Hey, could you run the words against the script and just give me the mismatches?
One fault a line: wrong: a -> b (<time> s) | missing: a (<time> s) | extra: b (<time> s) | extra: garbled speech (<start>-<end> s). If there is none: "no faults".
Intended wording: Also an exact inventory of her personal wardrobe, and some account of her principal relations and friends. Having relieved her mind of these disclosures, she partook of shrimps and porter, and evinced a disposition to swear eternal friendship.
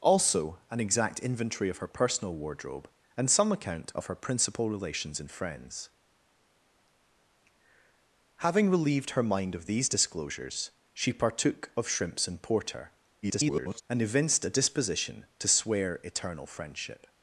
extra: garbled speech (13.2-13.8 s)